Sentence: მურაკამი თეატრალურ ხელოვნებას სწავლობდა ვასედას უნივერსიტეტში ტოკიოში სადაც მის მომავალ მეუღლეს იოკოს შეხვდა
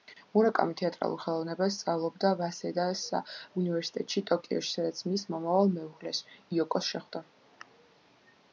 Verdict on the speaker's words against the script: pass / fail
pass